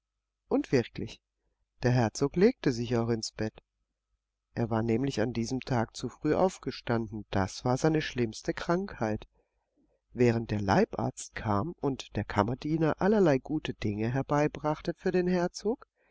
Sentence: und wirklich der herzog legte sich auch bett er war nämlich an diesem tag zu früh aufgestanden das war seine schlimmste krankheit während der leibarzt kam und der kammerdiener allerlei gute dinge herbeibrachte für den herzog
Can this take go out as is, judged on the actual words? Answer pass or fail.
fail